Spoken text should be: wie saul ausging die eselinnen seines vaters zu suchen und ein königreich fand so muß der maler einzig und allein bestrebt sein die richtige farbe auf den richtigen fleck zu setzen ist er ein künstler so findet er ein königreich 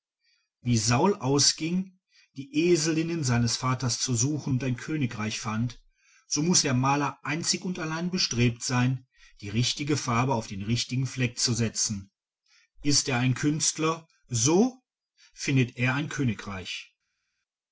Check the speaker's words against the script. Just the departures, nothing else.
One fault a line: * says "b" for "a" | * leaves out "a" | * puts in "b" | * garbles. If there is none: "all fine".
all fine